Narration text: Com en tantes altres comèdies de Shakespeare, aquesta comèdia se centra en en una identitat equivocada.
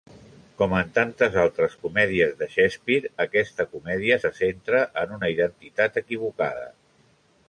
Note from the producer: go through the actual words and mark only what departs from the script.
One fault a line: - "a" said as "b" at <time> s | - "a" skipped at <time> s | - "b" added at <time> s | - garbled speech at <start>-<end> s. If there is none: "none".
- "en" skipped at 5.2 s